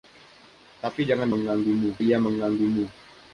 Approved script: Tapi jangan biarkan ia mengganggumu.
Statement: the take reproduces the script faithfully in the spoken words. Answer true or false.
false